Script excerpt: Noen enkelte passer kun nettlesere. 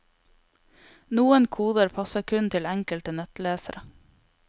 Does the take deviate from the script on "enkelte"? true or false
true